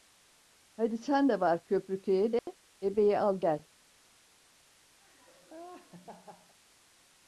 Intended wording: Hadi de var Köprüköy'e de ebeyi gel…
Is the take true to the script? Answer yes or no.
no